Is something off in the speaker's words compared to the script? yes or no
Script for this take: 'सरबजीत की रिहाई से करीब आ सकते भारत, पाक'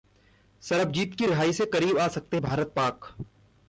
no